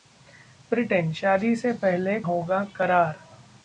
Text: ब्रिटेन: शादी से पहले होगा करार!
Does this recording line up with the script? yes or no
yes